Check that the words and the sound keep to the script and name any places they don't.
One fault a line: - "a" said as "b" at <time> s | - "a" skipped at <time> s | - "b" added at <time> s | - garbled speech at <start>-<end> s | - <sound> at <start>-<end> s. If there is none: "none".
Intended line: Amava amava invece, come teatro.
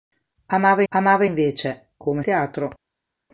none